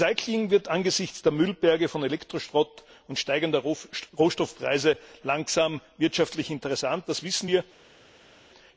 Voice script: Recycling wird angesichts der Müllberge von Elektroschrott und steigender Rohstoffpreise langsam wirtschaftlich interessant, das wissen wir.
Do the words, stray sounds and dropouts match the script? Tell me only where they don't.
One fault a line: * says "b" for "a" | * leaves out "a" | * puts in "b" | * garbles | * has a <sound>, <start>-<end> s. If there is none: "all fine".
all fine